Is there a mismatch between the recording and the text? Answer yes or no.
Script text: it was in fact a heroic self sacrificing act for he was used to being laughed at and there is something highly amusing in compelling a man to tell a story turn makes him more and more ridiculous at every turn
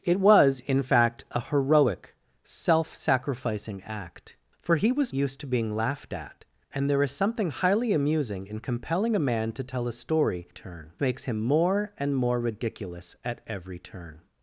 no